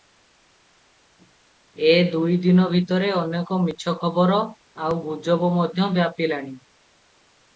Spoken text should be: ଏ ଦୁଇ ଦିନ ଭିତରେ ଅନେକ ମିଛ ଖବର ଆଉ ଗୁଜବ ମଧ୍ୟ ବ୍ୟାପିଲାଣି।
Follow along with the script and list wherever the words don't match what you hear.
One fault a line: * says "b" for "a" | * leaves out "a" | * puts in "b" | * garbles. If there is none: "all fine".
all fine